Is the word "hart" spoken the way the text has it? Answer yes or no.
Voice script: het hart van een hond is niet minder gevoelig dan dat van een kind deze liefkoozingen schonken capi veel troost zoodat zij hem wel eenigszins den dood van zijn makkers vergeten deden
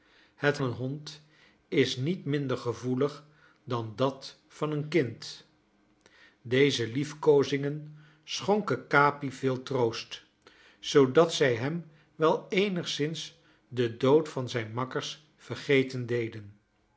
no